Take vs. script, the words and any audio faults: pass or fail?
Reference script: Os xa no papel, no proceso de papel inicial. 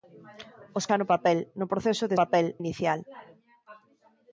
pass